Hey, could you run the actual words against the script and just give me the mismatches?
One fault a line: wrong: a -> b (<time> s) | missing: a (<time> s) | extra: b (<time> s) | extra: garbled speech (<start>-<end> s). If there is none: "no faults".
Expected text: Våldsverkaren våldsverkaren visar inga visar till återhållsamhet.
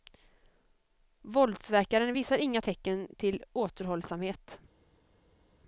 missing: våldsverkaren (2.1 s)
wrong: visar -> tecken (2.6 s)